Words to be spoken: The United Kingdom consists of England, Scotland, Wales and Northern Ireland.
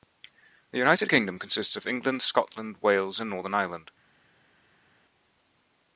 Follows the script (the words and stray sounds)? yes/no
yes